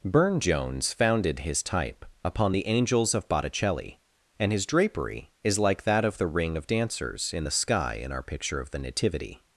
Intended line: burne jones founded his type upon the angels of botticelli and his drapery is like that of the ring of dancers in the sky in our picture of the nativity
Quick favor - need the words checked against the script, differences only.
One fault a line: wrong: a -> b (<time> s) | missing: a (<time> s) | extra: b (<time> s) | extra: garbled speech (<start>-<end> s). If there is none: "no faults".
no faults